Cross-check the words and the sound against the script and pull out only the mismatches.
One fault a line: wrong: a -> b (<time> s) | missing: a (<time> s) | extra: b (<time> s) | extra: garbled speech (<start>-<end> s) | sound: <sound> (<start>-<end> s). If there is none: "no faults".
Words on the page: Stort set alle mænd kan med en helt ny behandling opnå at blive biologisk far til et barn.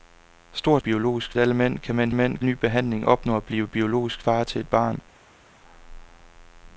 wrong: set -> biologisk (0.8 s)
wrong: helt -> mænd (2.1 s)